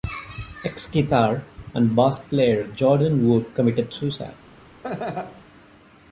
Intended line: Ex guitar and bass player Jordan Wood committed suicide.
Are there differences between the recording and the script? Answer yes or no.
no